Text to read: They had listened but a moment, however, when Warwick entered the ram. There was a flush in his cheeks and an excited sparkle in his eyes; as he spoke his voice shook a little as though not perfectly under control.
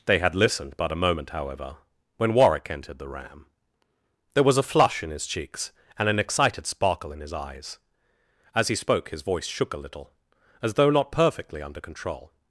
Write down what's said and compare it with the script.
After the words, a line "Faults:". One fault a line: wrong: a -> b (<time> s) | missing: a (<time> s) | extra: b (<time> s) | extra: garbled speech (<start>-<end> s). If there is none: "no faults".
They had listened but a moment, however, when Warwick entered the ram. There was a flush in his cheeks and an excited sparkle in his eyes; as he spoke his voice shook a little as though not perfectly under control.
Faults:
no faults